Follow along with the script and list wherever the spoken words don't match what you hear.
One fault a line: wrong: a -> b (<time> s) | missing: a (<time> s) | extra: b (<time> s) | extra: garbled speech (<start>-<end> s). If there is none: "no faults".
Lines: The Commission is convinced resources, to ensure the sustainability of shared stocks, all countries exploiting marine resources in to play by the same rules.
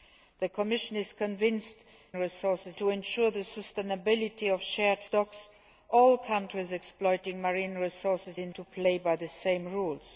no faults